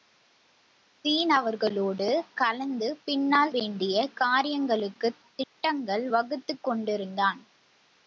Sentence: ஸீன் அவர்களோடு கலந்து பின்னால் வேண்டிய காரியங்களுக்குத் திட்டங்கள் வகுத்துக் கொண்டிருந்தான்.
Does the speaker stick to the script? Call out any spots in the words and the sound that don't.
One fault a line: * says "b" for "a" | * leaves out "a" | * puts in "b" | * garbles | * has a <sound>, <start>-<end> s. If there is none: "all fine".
* has a dropout, 5.4-5.6 s